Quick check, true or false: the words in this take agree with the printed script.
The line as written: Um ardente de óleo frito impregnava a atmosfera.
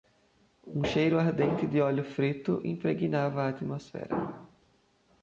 false